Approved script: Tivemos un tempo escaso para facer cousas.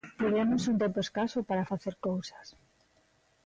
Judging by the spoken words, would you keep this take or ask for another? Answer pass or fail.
pass